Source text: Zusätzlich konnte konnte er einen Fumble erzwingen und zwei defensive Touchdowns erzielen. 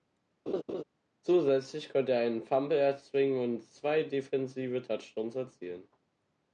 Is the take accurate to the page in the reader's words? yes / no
no